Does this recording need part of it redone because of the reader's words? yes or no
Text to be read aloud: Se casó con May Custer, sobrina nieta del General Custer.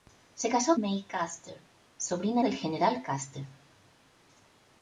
yes